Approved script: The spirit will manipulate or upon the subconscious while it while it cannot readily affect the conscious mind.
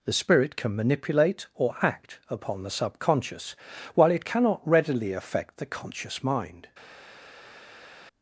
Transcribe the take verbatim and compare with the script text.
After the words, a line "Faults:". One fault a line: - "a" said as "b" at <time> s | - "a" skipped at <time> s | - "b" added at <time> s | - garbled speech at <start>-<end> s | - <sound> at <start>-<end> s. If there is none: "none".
The spirit can manipulate or act upon the subconscious while it cannot readily affect the conscious mind.
Faults:
- "will" said as "can" at 0.6 s
- "act" added at 1.8 s
- "while it" skipped at 4.2 s